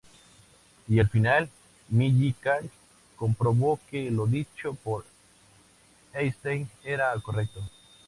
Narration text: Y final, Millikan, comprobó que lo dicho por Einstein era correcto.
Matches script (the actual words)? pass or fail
fail